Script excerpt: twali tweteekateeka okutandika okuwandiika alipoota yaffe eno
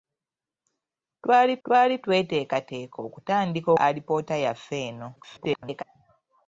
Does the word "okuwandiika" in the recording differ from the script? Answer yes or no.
yes